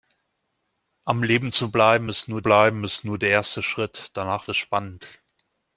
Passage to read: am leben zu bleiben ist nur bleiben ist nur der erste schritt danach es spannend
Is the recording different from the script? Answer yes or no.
no